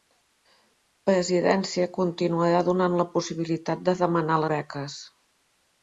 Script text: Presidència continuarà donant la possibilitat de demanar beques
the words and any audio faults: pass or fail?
pass